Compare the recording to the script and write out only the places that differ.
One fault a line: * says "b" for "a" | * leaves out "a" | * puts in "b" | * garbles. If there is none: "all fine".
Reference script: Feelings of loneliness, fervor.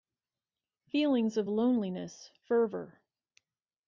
all fine